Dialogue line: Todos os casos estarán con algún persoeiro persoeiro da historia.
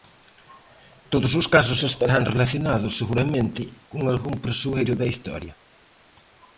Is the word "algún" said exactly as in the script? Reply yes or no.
yes